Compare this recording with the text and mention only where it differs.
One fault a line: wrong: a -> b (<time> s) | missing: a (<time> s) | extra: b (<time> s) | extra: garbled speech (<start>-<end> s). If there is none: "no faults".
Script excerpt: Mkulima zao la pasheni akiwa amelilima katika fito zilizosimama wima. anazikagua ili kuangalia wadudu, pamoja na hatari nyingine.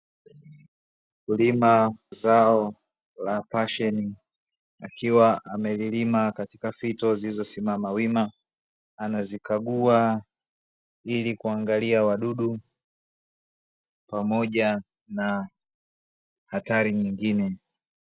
no faults